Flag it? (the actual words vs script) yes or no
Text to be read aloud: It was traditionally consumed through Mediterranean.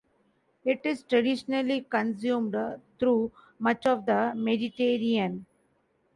yes